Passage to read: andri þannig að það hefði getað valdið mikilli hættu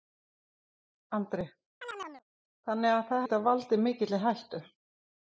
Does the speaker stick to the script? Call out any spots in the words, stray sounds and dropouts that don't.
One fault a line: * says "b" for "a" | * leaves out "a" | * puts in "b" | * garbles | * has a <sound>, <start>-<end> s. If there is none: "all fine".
* has a chirp, 1.8-2.2 s
* leaves out "hefði"